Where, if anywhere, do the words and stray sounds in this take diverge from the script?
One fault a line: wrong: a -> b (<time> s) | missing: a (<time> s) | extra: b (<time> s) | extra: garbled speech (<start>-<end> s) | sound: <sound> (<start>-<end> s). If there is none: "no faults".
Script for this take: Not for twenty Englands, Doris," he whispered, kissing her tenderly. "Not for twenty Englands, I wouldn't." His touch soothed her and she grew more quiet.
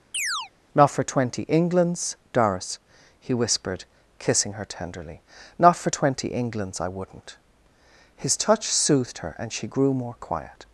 sound: chirp (0.1-0.5 s)